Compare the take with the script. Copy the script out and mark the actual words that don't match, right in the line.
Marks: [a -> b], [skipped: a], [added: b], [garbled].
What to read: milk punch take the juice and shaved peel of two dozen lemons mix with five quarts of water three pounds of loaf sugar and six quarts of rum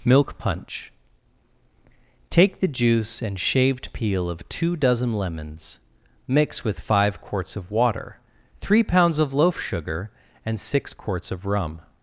milk punch take the juice and shaved peel of two dozen lemons mix with five quarts of water three pounds of loaf sugar and six quarts of rum